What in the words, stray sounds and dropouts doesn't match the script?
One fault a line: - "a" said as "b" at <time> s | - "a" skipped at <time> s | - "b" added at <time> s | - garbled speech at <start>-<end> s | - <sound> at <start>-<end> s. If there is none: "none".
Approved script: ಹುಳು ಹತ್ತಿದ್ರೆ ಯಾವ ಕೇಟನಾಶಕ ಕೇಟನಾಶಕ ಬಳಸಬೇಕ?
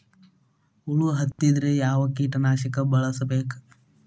- dropout at 1.3-1.4 s
- "ಕೇಟನಾಶಕ" skipped at 2.8 s